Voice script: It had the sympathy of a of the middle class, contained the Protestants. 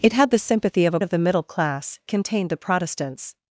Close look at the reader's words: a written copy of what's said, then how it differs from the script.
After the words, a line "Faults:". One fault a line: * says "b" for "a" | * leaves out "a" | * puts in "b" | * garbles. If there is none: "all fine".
It had the sympathy of a of the middle class, contained the Protestants.
Faults:
all fine